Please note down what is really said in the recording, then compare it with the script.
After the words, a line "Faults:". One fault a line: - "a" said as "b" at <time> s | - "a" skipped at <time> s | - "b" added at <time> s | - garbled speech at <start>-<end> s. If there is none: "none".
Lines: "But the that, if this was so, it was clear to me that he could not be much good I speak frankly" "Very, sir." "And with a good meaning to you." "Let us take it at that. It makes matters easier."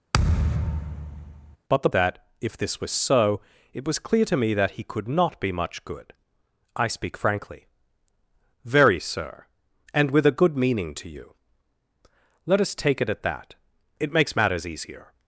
"But the that, if this was so, it was clear to me that he could not be much good I speak frankly" "Very, sir." "And with a good meaning to you." "Let us take it at that. It makes matters easier."
Faults:
none